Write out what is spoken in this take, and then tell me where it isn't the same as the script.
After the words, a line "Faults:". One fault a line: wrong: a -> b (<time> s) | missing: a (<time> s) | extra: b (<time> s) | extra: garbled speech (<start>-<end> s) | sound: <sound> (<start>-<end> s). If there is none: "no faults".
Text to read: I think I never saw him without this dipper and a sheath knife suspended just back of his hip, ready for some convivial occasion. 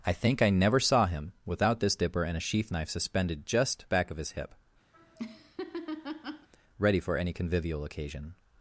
I think I never saw him without this dipper and a sheath knife suspended just back of his hip, ready for any convivial occasion.
Faults:
sound: laugh (4.9-6.5 s)
wrong: some -> any (7.2 s)